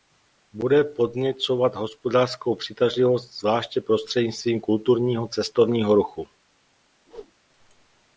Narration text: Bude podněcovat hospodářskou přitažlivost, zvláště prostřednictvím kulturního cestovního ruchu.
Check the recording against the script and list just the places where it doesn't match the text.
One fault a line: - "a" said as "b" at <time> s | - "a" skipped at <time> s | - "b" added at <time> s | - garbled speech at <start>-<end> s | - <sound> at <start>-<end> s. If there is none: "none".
- whoosh at 7.1-7.3 s